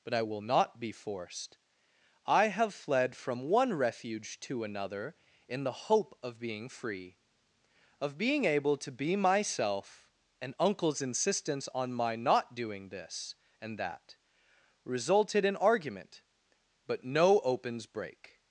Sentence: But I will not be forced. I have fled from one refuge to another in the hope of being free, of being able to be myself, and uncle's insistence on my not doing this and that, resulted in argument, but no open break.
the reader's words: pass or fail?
fail